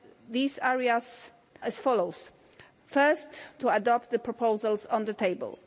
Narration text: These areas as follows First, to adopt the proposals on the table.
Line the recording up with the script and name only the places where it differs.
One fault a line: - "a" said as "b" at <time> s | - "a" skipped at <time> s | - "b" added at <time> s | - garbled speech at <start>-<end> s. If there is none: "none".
none